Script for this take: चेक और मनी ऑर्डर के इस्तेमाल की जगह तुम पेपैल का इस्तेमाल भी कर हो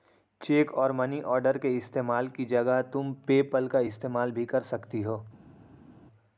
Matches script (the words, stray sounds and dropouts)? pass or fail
fail